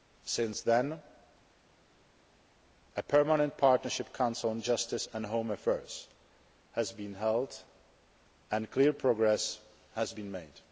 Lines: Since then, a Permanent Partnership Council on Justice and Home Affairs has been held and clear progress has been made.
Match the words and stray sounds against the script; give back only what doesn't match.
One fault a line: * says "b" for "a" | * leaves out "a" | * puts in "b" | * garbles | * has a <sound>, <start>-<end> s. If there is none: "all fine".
all fine